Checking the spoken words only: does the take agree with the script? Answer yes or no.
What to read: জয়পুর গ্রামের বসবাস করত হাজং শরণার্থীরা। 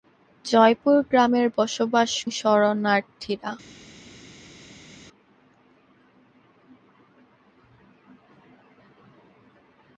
no